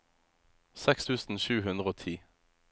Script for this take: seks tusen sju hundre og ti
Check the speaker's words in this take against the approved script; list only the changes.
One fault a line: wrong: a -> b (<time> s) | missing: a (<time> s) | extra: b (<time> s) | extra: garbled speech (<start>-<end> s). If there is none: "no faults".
no faults